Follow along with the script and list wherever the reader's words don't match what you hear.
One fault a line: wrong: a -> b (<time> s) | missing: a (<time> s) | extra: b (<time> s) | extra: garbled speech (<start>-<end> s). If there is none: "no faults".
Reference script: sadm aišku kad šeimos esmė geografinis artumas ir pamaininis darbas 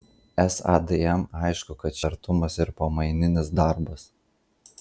missing: šeimos esmė geografinis (2.0 s)